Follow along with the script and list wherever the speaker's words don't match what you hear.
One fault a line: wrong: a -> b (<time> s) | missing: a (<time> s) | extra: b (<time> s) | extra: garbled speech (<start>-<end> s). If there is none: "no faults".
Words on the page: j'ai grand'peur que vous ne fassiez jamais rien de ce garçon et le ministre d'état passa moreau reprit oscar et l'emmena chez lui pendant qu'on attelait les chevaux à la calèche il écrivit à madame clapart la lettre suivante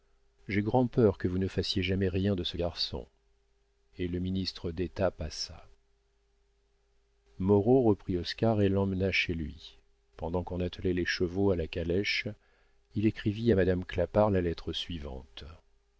no faults